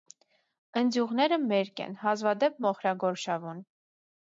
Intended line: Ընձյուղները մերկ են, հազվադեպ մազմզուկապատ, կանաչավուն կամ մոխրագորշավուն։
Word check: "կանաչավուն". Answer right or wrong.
wrong